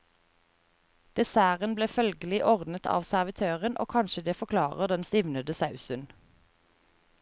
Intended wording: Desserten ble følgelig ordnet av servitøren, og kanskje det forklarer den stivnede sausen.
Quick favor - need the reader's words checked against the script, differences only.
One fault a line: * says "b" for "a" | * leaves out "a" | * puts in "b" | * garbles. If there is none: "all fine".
all fine